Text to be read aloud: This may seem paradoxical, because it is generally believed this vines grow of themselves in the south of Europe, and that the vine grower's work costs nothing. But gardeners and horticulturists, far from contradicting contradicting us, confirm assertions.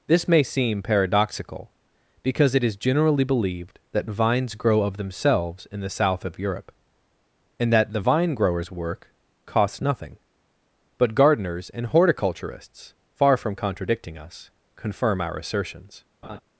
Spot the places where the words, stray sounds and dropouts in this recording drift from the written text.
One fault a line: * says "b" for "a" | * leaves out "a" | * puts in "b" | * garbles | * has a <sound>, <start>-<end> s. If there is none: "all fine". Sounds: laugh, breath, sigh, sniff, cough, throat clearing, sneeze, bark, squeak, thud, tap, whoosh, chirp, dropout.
* says "that" for "this"
* leaves out "contradicting"
* puts in "our"
* has a laugh, 16.2-16.4 s